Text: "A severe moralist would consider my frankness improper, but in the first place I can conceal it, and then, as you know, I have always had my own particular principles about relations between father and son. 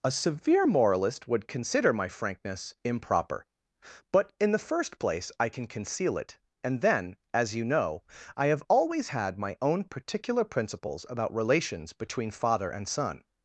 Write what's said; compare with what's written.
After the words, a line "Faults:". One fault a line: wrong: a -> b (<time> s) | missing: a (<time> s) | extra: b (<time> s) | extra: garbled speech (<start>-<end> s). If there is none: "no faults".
"A severe moralist would consider my frankness improper, but in the first place I can conceal it, and then, as you know, I have always had my own particular principles about relations between father and son.
Faults:
no faults